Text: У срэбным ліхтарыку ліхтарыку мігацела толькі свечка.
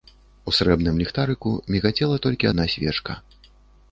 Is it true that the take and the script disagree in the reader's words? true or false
true